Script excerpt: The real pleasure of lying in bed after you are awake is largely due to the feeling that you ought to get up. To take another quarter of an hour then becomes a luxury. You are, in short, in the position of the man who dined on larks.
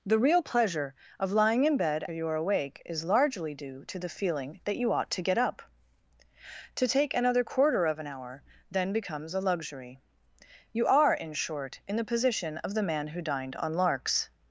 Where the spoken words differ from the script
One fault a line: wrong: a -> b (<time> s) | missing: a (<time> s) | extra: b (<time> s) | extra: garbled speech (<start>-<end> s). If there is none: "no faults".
missing: after (2.0 s)